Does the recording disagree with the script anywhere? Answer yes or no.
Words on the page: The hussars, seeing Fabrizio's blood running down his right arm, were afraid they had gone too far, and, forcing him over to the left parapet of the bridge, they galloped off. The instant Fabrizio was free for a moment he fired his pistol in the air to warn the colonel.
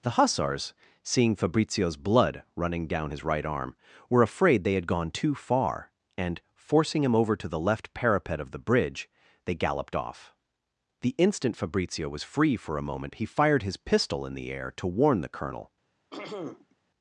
no